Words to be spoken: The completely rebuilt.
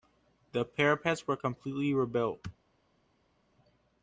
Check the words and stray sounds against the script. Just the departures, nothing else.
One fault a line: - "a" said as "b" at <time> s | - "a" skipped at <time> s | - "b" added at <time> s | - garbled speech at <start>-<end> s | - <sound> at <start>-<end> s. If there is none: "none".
- "parapets were" added at 0.7 s